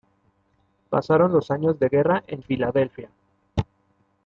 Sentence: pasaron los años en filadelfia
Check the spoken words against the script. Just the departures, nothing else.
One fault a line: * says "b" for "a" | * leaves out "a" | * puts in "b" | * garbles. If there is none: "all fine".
* puts in "de guerra"